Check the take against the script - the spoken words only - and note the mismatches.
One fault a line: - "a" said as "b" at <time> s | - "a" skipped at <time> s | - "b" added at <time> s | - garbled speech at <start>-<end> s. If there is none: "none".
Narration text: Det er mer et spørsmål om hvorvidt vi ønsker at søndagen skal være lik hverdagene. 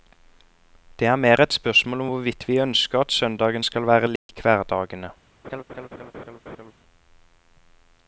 none